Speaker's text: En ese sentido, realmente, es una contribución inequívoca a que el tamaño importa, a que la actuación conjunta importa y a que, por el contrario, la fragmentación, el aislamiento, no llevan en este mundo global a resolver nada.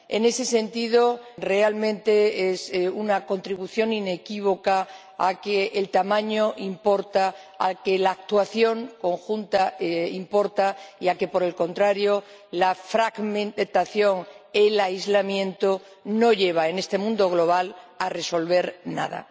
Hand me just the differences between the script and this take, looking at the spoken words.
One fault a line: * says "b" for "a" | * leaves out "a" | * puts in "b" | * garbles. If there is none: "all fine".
all fine